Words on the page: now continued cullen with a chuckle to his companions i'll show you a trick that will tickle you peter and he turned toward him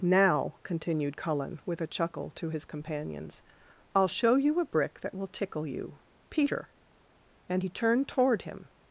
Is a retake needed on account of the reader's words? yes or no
yes